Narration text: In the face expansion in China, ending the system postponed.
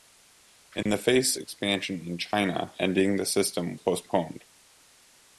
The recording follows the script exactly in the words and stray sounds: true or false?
false